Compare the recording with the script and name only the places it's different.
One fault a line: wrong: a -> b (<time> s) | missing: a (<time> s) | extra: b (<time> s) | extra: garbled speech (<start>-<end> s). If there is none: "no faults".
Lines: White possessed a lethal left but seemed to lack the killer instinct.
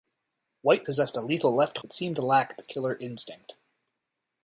no faults